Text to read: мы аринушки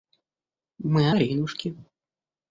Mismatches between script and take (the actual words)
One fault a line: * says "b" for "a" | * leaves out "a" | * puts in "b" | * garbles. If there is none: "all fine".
all fine